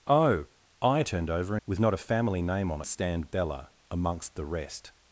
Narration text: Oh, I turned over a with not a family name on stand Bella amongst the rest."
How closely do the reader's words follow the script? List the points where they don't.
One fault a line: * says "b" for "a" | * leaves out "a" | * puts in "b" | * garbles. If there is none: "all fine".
all fine